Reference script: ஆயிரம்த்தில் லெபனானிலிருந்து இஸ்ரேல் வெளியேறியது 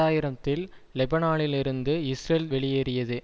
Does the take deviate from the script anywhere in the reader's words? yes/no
no